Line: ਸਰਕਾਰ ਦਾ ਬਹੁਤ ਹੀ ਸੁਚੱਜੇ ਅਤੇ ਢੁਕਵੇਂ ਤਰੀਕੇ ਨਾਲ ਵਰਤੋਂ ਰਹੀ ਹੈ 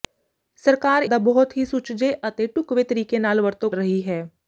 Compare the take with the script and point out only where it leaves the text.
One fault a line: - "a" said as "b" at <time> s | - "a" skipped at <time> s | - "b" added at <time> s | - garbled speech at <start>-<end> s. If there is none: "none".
none